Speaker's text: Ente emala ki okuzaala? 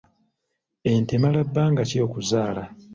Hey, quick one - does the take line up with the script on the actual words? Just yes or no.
no